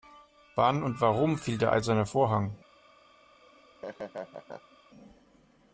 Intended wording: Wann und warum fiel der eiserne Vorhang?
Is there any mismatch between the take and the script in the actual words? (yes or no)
no